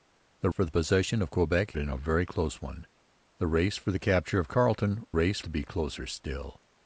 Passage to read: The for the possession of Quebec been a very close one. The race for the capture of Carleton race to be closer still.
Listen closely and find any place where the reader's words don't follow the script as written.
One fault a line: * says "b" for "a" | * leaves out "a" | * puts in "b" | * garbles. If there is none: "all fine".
all fine